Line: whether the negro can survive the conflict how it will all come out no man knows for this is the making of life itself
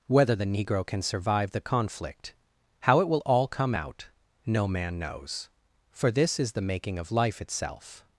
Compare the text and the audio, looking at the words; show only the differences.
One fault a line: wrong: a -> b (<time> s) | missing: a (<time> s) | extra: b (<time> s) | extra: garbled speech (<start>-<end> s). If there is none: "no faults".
no faults